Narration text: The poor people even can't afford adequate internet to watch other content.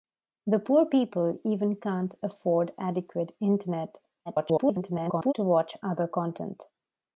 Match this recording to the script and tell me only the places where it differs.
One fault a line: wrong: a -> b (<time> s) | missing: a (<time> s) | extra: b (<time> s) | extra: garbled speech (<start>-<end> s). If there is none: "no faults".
extra: garbled speech (4.3-5.3 s)